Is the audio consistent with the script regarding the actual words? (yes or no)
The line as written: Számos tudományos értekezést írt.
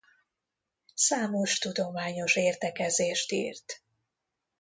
yes